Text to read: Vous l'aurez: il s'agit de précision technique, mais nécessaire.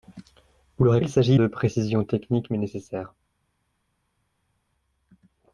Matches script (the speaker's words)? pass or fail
pass